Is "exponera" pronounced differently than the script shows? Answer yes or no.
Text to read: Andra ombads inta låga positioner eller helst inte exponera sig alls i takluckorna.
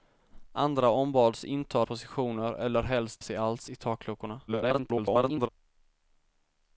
yes